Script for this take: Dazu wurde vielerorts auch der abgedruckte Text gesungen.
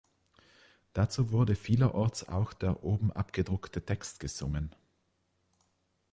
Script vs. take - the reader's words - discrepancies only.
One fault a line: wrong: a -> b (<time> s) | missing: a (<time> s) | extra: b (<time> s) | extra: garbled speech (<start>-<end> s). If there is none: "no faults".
extra: oben (2.8 s)